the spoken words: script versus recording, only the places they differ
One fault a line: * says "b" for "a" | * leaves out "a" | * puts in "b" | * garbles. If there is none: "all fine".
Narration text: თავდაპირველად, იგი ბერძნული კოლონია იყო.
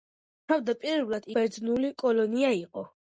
* leaves out "იგი"